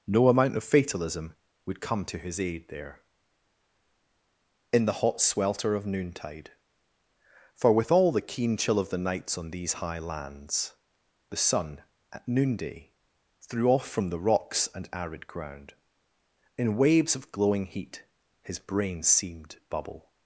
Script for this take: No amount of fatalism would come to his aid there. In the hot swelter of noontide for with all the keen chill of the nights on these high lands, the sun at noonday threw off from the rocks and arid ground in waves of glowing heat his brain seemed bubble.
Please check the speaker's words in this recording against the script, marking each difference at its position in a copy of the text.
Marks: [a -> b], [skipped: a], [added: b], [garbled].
No amount of fatalism would come to his aid there. In the hot swelter of noontide for with all the keen chill of the nights on these high lands, the sun at noonday threw off from the rocks and arid ground in waves of glowing heat his brain seemed bubble.